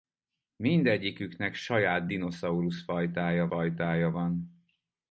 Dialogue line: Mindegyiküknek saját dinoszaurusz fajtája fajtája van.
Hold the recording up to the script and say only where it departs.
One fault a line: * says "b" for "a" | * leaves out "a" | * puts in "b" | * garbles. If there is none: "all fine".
all fine